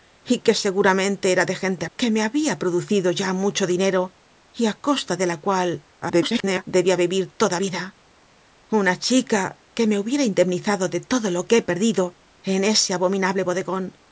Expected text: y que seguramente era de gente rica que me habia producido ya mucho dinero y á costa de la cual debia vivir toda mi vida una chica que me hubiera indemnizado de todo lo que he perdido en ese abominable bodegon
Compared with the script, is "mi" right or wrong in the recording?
wrong